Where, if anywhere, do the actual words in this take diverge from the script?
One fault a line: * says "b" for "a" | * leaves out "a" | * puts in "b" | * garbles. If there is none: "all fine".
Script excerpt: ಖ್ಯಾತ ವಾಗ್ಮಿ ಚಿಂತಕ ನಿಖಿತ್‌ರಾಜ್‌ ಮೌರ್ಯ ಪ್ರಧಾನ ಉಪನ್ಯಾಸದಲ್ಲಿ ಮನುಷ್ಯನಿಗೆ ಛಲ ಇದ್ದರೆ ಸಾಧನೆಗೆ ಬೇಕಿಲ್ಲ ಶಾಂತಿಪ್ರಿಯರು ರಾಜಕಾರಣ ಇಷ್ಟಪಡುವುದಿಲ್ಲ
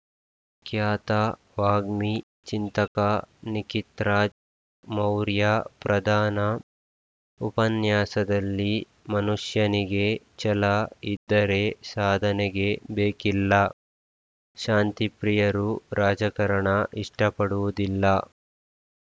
all fine